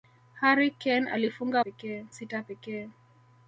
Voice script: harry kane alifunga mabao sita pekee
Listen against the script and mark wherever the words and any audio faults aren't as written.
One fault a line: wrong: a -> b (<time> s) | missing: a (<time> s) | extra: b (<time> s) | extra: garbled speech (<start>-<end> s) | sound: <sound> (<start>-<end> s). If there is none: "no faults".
wrong: mabao -> pekee (1.6 s)